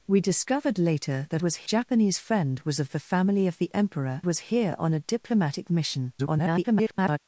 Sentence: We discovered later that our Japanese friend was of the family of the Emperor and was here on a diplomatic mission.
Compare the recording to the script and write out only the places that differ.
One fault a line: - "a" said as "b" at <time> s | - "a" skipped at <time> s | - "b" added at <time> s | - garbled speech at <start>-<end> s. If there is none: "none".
- "our" said as "was" at 1.4 s
- "and" skipped at 4.2 s
- garbled speech at 6.2-7.2 s